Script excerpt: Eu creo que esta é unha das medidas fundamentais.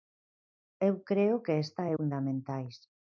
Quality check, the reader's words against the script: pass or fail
fail